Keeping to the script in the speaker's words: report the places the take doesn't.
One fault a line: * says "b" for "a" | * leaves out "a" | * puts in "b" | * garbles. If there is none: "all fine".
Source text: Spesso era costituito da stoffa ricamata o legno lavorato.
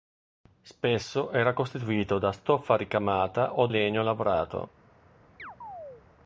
all fine